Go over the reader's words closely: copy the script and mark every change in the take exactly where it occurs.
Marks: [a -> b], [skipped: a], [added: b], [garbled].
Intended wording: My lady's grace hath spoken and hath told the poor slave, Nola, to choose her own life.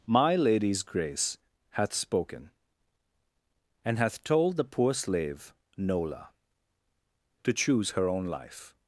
My lady's grace hath spoken and hath told the poor slave, Nola, to choose her own life.